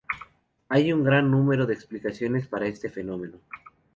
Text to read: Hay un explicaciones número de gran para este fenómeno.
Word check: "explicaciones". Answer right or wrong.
wrong